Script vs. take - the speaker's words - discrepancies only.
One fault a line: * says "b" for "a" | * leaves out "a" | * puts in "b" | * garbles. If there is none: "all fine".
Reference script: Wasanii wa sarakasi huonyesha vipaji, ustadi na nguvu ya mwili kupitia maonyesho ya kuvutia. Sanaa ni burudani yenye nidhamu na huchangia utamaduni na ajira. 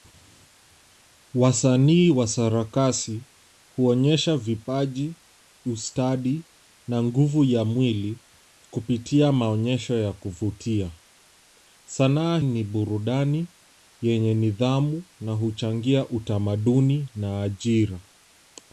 all fine